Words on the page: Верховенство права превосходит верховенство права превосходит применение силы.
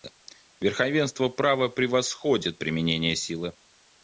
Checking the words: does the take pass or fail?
fail